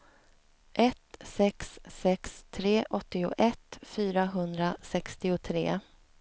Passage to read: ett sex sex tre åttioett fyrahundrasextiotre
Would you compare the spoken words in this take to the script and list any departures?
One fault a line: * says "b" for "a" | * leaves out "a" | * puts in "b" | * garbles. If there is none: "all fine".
all fine